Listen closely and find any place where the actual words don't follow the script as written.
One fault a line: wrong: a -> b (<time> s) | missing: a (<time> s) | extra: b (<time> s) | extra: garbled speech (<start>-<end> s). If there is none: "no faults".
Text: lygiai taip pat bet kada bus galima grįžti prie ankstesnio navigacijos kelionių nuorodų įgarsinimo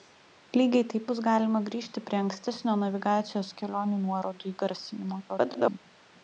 missing: pat bet kada (1.0 s)
extra: garbled speech (5.3-5.8 s)